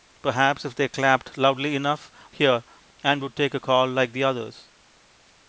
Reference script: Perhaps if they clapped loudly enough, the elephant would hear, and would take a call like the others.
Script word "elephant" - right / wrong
wrong